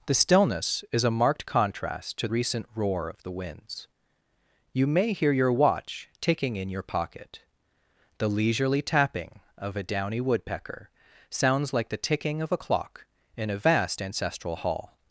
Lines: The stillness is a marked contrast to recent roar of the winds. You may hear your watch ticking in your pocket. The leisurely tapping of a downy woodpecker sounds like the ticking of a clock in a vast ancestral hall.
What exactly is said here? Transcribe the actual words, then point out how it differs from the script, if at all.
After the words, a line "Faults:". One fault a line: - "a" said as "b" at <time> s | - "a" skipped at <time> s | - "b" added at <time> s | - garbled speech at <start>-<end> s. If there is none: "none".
The stillness is a marked contrast to recent roar of the winds. You may hear your watch ticking in your pocket. The leisurely tapping of a downy woodpecker sounds like the ticking of a clock in a vast ancestral hall.
Faults:
none